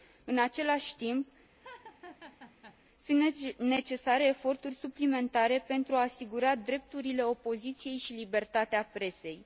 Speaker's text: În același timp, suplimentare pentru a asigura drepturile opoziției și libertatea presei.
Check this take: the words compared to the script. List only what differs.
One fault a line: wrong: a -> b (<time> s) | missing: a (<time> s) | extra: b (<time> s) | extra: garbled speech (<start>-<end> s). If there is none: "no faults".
extra: sunt necesare eforturi (3.0 s)